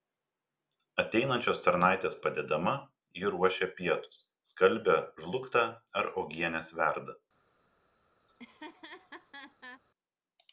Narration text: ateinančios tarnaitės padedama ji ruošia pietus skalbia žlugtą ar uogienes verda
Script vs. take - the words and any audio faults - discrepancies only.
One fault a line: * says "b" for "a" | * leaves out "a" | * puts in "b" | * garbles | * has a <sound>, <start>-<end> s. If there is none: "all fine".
* has a laugh, 8.3-9.8 s